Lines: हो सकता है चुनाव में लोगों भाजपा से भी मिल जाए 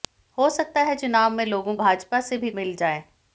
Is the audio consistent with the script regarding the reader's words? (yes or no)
yes